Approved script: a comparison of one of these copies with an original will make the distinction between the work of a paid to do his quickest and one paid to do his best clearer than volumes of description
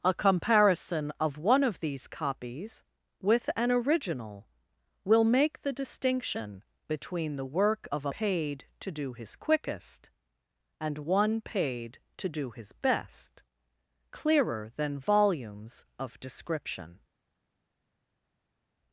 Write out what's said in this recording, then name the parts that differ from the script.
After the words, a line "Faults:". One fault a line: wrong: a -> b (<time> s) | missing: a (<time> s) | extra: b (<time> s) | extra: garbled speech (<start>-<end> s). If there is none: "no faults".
a comparison of one of these copies with an original will make the distinction between the work of a paid to do his quickest and one paid to do his best clearer than volumes of description
Faults:
no faults